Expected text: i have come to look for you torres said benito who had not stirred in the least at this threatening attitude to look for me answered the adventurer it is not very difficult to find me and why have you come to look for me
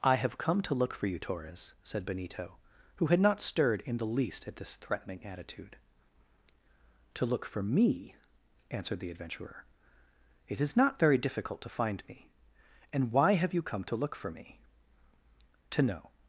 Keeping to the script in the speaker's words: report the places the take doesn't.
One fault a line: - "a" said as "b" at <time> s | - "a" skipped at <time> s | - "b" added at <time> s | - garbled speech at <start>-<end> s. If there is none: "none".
- "to know" added at 15.7 s